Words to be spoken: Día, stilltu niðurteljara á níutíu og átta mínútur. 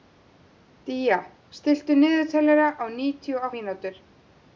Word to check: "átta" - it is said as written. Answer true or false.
false